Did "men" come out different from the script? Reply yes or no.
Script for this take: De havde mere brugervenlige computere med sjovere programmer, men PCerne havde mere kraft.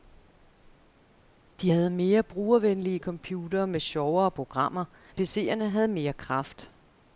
yes